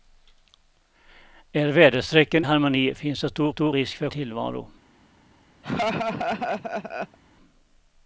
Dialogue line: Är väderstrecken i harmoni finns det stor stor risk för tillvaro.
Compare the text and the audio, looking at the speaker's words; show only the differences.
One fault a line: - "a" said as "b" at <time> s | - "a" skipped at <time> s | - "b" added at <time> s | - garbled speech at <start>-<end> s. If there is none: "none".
none